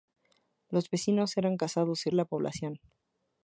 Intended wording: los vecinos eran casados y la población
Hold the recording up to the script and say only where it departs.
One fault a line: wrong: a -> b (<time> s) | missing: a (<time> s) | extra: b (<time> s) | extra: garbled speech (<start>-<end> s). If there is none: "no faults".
no faults